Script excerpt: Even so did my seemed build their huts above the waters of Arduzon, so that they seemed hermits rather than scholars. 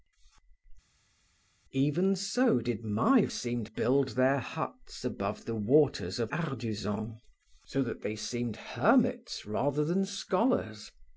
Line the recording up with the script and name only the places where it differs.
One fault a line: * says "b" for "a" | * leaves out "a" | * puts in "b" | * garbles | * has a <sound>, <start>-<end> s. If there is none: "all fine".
all fine